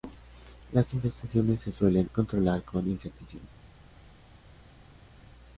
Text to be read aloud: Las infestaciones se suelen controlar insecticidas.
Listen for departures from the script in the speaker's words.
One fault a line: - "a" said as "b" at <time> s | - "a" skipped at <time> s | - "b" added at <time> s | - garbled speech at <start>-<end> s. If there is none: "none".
- "con" added at 2.6 s